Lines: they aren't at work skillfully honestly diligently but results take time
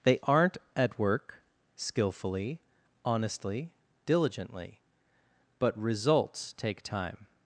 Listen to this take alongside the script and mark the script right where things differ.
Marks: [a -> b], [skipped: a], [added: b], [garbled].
they aren't at work skillfully honestly diligently but results take time